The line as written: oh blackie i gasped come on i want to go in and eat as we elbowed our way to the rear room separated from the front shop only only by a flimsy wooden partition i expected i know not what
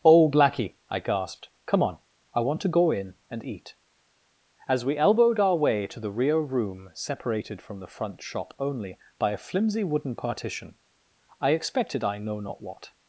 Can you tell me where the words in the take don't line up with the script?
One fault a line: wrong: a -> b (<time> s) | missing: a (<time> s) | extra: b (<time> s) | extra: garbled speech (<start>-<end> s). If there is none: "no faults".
missing: only (9.0 s)